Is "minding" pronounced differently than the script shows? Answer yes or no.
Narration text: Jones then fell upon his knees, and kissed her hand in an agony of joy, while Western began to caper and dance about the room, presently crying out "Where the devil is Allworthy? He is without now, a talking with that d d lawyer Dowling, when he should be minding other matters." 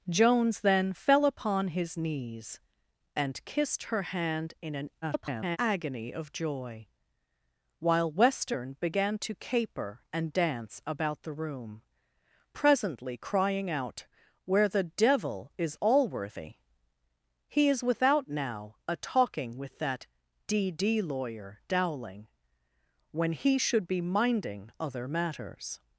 no